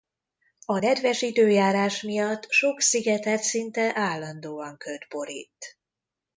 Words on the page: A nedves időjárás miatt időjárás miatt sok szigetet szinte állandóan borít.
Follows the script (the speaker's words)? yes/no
no